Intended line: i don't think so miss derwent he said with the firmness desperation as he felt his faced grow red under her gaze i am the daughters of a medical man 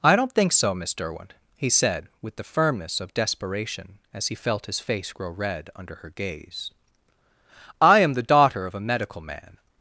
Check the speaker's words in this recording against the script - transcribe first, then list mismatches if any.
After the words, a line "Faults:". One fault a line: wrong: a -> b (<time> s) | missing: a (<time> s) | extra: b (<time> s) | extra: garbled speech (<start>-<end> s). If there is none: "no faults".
i don't think so miss derwent he said with the firmness of desperation as he felt his face grow red under her gaze i am the daughter of a medical man
Faults:
extra: of (3.0 s)
wrong: faced -> face (4.8 s)
wrong: daughters -> daughter (8.2 s)